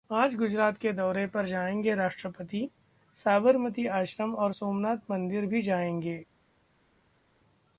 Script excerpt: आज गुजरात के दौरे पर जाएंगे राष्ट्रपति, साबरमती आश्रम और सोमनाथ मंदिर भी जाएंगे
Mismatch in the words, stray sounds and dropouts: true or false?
false